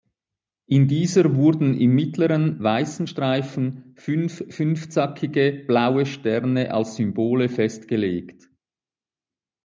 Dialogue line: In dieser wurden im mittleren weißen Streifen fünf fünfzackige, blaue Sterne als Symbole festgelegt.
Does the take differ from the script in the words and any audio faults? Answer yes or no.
no